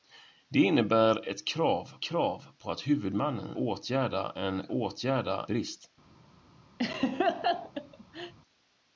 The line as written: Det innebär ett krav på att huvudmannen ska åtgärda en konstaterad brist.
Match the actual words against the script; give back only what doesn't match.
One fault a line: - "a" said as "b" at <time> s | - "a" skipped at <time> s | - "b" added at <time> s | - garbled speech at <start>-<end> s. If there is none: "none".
- "krav" added at 2.0 s
- "ska" skipped at 3.6 s
- "konstaterad" said as "åtgärda" at 4.7 s